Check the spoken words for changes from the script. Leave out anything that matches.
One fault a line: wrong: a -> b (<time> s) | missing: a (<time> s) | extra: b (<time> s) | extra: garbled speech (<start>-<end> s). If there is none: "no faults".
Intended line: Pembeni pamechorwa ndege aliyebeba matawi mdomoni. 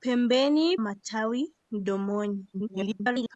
missing: pamechorwa ndege aliyebeba (0.8 s)
extra: garbled speech (2.5-3.4 s)